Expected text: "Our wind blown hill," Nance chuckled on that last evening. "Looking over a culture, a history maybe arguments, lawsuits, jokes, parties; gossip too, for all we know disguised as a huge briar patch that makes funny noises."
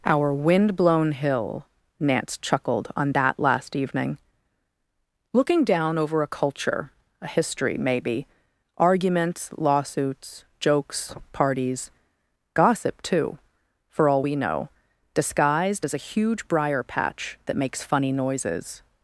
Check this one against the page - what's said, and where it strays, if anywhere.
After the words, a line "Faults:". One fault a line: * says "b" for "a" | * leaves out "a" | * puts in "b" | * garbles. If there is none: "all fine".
"Our wind blown hill," Nance chuckled on that last evening. "Looking down over a culture, a history maybe arguments, lawsuits, jokes, parties; gossip too, for all we know disguised as a huge briar patch that makes funny noises."
Faults:
* puts in "down"